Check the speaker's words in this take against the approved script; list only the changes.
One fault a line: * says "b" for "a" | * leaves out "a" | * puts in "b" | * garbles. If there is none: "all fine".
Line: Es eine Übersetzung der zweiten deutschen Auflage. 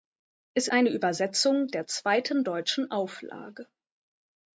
all fine